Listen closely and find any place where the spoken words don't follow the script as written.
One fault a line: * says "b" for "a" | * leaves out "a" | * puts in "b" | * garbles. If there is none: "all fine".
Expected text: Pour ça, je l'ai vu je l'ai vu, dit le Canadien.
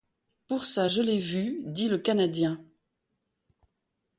* leaves out "je l'ai vu"